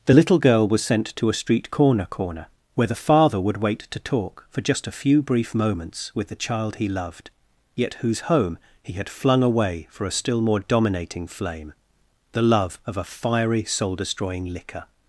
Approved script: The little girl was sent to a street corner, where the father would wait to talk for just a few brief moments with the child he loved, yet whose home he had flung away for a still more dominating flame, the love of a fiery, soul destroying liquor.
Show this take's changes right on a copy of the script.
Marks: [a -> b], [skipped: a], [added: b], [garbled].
The little girl was sent to a street corner, [added: corner] where the father would wait to talk for just a few brief moments with the child he loved, yet whose home he had flung away for a still more dominating flame, the love of a fiery, soul destroying liquor.